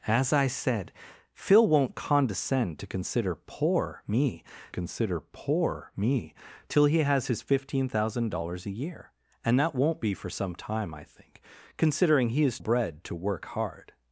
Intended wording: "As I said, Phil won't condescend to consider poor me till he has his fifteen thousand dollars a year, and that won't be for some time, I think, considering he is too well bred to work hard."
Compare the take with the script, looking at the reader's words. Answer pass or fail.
fail